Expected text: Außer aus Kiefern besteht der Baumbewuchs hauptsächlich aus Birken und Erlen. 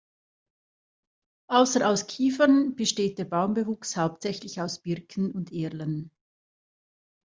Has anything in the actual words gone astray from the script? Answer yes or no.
no